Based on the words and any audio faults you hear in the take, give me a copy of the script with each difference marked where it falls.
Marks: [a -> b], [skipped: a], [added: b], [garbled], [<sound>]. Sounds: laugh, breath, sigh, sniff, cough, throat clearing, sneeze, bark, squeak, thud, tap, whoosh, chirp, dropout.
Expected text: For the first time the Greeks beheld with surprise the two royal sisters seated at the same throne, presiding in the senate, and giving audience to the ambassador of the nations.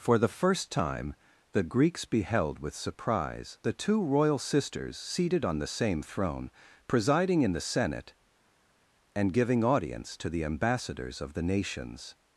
For the first time the Greeks beheld with surprise the two royal sisters seated [at -> on] the same throne, presiding in the senate, and giving audience to the [ambassador -> ambassadors] of the nations.